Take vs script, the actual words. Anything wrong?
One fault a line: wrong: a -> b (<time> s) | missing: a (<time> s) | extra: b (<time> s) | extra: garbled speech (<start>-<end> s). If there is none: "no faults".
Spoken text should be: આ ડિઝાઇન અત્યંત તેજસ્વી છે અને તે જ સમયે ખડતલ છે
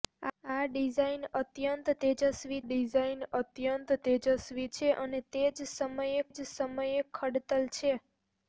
extra: ડિઝાઇન અત્યંત તેજસ્વી (2.6 s)
extra: જ સમયે (6.3 s)